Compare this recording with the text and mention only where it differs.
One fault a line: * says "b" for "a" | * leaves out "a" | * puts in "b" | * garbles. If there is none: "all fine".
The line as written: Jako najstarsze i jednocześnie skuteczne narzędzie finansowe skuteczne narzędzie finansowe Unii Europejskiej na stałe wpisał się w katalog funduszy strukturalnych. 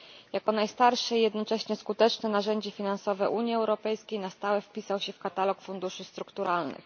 * leaves out "skuteczne narzędzie finansowe"